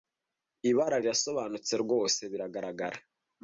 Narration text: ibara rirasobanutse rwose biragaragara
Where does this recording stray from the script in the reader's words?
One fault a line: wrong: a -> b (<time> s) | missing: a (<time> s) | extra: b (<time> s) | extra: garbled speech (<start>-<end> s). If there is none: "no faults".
no faults